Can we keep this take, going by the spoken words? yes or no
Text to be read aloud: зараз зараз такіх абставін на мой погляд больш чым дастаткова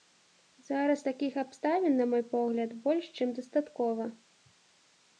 no